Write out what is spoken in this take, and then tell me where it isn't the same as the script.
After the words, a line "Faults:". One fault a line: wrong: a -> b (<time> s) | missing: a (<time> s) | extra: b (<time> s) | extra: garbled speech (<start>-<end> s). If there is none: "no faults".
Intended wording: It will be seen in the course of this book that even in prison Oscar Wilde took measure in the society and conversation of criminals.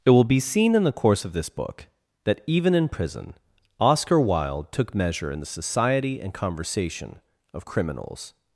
It will be seen in the course of this book that even in prison Oscar Wilde took measure in the society and conversation of criminals.
Faults:
no faults